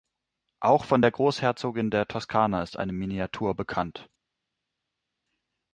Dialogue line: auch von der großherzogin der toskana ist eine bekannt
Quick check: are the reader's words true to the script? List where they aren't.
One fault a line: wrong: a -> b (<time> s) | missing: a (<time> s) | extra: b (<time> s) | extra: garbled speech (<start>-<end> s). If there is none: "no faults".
extra: miniatur (2.9 s)